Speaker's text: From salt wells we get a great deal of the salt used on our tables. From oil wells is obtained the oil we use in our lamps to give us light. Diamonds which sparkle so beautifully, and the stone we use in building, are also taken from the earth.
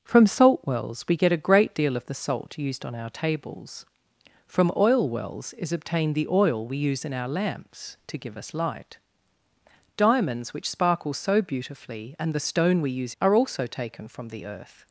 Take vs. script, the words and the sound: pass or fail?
fail